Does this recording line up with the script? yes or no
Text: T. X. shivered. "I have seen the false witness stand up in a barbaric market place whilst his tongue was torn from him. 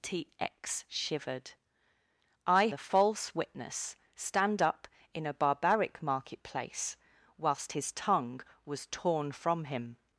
no